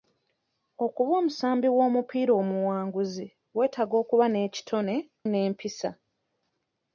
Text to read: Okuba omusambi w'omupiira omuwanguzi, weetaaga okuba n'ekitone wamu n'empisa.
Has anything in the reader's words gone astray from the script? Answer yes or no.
yes